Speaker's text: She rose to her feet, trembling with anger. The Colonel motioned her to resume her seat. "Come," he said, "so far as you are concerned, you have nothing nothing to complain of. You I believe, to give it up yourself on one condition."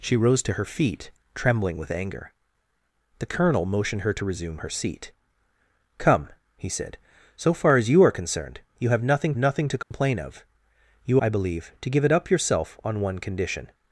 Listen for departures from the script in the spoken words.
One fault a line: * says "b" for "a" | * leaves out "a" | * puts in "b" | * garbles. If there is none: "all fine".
all fine